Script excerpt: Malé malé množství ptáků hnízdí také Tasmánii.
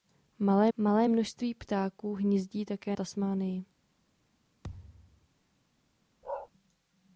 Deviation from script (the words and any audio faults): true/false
true